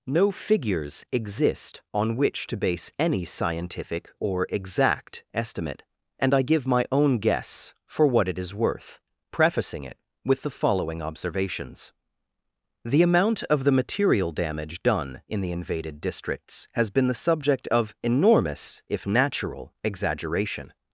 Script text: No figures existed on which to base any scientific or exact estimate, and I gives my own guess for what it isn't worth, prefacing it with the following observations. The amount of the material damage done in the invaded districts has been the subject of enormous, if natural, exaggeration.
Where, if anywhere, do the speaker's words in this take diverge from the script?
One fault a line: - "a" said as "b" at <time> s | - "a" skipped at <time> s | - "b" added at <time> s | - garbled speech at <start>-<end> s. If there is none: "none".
- "existed" said as "exist" at 1.1 s
- "gives" said as "give" at 6.4 s
- "isn't" said as "is" at 8.4 s